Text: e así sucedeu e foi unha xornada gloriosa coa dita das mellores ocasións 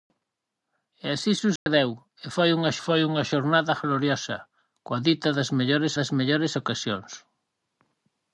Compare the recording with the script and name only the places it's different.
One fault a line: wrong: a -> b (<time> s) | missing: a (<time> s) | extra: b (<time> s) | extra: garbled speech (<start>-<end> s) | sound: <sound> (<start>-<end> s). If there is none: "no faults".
sound: dropout (1.6-1.7 s)
extra: foi unha (2.8 s)
extra: das mellores (6.0 s)